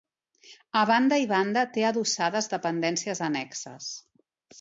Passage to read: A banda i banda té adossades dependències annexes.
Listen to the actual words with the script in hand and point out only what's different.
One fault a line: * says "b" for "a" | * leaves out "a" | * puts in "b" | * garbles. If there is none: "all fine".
all fine